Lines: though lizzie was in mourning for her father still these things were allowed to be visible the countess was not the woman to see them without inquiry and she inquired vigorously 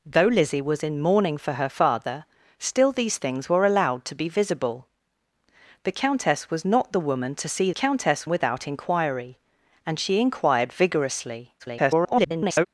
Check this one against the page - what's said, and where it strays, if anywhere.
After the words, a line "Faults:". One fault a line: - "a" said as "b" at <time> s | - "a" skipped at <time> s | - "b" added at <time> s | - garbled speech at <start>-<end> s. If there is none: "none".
though lizzie was in mourning for her father still these things were allowed to be visible the countess was not the woman to see countess without inquiry and she inquired vigorously [garbled]
Faults:
- "them" said as "countess" at 7.7 s
- garbled speech at 11.6-12.7 s